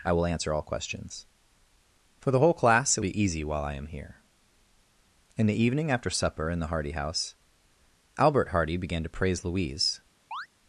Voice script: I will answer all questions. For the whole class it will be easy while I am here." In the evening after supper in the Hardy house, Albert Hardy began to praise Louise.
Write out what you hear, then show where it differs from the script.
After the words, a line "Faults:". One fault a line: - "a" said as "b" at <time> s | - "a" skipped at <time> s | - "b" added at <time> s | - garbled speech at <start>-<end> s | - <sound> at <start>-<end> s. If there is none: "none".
I will answer all questions. For the whole class it be easy while I am here." In the evening after supper in the Hardy house, Albert Hardy began to praise Louise.
Faults:
- "will" skipped at 3.0 s
- chirp at 10.3-10.5 s